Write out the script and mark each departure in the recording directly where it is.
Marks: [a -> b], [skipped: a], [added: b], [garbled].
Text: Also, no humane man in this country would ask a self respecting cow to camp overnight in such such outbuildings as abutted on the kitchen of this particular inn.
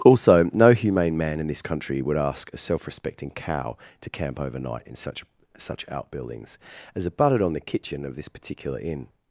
Also, no humane man in this country would ask a self respecting cow to camp overnight in such such outbuildings as abutted on the kitchen of this particular inn.